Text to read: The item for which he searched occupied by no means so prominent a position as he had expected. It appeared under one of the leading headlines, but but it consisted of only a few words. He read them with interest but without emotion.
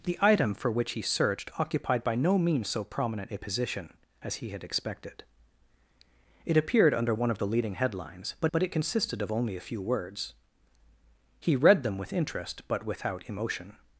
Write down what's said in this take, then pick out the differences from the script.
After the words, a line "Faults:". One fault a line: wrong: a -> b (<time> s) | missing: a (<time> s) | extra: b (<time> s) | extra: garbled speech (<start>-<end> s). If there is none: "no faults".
The item for which he searched occupied by no means so prominent a position as he had expected. It appeared under one of the leading headlines, but but it consisted of only a few words. He read them with interest but without emotion.
Faults:
no faults